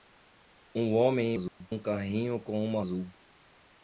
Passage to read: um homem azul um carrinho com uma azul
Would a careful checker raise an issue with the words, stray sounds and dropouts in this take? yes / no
yes